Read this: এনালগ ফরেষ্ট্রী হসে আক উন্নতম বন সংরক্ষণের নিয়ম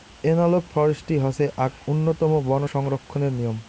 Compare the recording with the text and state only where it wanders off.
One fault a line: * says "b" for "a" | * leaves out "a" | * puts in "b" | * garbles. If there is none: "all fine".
all fine